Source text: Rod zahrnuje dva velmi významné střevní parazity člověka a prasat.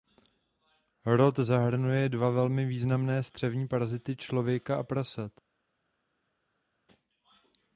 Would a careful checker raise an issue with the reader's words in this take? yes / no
no